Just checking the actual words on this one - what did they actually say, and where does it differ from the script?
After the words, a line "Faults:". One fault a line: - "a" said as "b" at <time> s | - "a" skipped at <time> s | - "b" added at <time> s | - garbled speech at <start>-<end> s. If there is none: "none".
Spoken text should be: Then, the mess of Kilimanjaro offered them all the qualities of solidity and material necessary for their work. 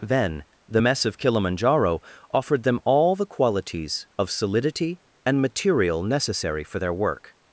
Then, the mess of Kilimanjaro offered them all the qualities of solidity and material necessary for their work.
Faults:
none